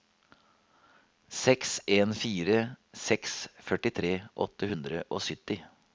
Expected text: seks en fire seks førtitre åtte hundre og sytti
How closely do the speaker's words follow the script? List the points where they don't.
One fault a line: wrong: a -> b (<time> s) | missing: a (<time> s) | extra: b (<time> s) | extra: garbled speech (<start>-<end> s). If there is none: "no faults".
no faults